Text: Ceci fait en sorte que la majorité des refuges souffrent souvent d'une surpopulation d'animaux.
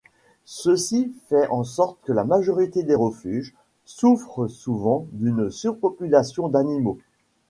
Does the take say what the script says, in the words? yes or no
yes